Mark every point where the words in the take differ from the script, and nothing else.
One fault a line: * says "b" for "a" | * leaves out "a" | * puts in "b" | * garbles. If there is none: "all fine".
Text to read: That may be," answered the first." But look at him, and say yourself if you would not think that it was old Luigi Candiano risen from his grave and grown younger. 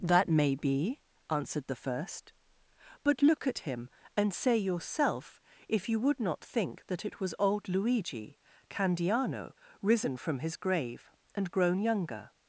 all fine